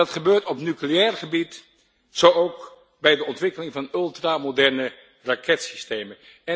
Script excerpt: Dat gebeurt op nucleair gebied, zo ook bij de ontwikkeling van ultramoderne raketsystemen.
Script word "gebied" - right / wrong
right